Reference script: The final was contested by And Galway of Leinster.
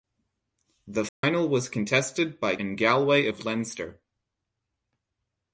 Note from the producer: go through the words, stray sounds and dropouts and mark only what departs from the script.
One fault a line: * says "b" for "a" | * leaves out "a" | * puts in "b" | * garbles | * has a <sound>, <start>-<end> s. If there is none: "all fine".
* has a dropout, 1.1-1.2 s